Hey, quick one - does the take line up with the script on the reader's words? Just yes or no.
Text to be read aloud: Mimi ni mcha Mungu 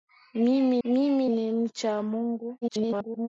no